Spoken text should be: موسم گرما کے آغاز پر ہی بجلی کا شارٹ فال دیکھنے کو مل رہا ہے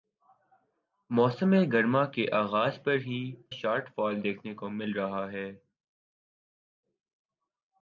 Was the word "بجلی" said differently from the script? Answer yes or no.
yes